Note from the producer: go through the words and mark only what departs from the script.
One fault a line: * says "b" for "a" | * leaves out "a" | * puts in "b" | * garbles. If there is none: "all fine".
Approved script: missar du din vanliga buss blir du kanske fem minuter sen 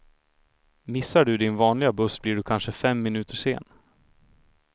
all fine